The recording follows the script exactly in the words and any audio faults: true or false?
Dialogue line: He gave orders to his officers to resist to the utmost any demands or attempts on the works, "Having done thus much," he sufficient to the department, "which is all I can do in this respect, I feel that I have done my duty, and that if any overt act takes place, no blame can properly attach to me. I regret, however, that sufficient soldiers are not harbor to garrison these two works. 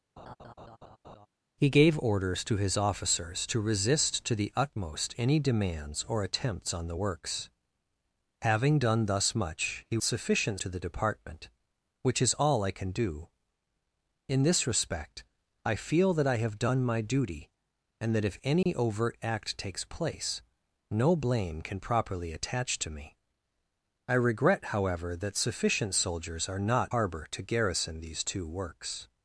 false